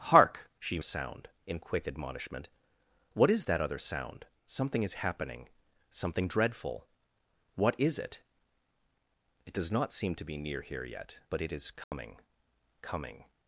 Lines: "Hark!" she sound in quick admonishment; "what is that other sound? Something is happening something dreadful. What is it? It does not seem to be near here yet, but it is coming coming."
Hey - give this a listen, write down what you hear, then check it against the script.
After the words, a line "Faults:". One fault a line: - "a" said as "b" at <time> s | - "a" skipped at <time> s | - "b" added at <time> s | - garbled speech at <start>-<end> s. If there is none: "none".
"Hark!" she sound in quick admonishment; "what is that other sound? Something is happening something dreadful. What is it? It does not seem to be near here yet, but it is coming coming."
Faults:
none